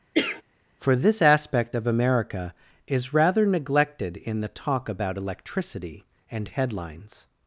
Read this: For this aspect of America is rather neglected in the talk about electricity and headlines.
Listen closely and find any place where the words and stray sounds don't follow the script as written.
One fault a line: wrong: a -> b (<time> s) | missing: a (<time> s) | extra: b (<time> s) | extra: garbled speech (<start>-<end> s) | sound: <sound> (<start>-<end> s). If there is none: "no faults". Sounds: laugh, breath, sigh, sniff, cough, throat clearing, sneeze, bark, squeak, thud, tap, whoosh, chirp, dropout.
sound: cough (0.1-0.4 s)